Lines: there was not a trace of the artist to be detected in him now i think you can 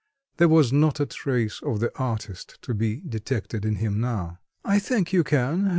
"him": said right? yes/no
yes